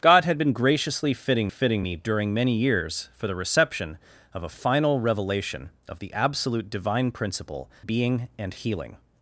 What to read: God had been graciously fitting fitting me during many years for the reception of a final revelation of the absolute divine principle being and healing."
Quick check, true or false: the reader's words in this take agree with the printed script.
true